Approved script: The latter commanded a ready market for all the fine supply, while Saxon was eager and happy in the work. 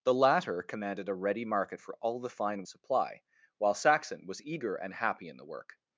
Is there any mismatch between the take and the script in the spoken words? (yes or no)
no